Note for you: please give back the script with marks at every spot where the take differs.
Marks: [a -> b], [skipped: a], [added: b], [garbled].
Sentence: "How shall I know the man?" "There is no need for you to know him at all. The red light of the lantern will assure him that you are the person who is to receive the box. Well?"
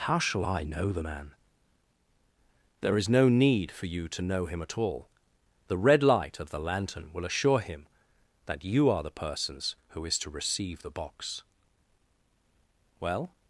"How shall I know the man?" "There is no need for you to know him at all. The red light of the lantern will assure him that you are the [person -> persons] who is to receive the box. Well?"